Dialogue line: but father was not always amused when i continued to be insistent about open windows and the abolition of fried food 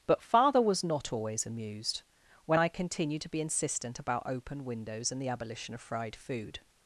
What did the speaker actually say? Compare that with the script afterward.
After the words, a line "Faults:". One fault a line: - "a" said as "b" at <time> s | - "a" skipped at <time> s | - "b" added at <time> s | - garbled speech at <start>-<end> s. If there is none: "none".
but father was not always amused when i continued to be insistent about open windows and the abolition of fried food
Faults:
none